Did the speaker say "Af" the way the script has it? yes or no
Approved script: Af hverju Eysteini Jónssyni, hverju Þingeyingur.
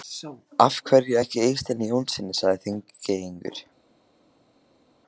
yes